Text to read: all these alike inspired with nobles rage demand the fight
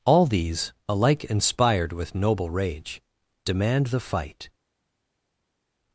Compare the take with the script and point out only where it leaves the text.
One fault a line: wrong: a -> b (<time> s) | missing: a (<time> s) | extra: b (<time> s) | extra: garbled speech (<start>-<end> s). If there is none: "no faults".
wrong: nobles -> noble (2.1 s)